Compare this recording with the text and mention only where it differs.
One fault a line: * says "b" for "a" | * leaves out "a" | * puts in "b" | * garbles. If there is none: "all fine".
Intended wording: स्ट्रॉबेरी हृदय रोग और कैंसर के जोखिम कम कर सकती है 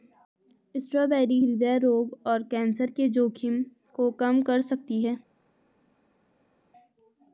* puts in "को"